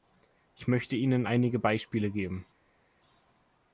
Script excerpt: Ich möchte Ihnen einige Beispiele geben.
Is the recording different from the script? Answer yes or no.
no